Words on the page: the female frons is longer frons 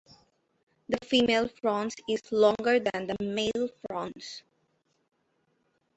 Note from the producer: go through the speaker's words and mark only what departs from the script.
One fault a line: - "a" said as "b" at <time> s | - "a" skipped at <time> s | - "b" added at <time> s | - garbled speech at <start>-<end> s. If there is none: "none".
- "than the male" added at 2.8 s